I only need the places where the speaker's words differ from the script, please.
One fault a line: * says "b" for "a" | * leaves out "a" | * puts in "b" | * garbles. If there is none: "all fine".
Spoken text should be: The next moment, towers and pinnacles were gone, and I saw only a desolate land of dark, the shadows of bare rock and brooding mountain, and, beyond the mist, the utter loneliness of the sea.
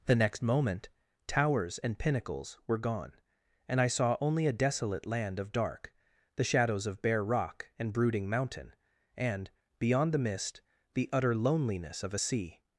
* says "a" for "the"